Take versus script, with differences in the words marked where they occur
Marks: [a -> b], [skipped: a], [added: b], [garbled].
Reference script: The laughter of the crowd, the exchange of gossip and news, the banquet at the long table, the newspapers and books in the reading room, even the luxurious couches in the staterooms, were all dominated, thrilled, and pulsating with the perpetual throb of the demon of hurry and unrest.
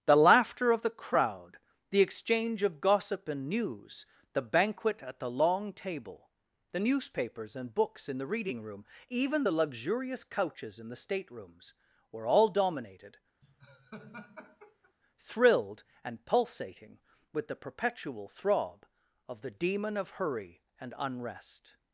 The laughter of the crowd, the exchange of gossip and news, the banquet at the long table, the newspapers and books in the reading room, even the luxurious couches in the staterooms, were all dominated, thrilled, and pulsating with the perpetual throb of the demon of hurry and unrest.